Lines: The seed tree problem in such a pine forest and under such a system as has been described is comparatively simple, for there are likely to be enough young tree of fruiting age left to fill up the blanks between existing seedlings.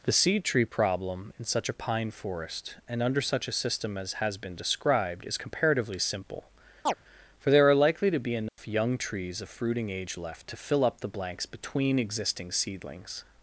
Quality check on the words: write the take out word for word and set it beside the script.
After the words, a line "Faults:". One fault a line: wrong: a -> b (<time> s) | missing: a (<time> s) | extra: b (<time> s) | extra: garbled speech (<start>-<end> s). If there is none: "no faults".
The seed tree problem in such a pine forest and under such a system as has been described is comparatively simple, for there are likely to be enough young trees of fruiting age left to fill up the blanks between existing seedlings.
Faults:
wrong: tree -> trees (9.0 s)